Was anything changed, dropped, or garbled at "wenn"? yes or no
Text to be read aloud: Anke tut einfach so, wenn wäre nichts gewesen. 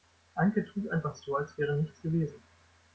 yes